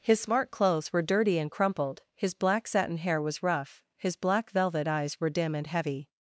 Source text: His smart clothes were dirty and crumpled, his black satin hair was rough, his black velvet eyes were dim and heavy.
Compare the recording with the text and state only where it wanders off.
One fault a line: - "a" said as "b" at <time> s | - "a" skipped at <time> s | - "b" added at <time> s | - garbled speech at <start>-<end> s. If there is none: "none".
none